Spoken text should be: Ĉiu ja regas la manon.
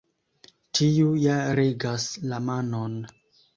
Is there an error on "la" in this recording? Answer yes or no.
no